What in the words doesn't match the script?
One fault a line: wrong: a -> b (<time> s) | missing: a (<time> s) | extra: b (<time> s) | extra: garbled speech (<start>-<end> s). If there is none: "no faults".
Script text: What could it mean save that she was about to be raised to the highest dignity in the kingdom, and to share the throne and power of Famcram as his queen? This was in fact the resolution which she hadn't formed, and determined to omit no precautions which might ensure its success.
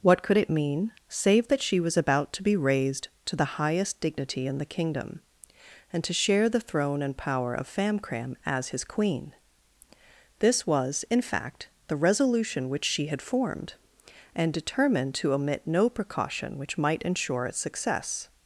wrong: hadn't -> had (13.1 s)
wrong: precautions -> precaution (15.9 s)